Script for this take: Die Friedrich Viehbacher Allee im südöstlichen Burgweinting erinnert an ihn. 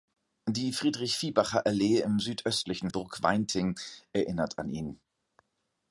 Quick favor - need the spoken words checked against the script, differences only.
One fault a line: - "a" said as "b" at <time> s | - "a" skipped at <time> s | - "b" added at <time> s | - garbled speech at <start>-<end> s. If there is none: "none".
none